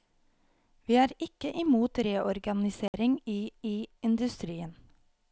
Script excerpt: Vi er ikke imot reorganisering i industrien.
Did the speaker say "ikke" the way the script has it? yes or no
yes